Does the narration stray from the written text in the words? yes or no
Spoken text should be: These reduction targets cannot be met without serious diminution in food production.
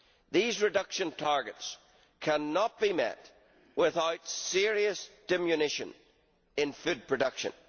no